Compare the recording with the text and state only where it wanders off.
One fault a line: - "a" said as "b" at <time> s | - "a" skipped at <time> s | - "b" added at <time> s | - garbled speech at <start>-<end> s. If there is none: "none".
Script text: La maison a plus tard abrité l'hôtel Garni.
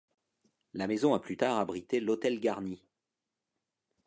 none